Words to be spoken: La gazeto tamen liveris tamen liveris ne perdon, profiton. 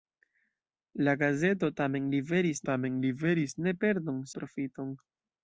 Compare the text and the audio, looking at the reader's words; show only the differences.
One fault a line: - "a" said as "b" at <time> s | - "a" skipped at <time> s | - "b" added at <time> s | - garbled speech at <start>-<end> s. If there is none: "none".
none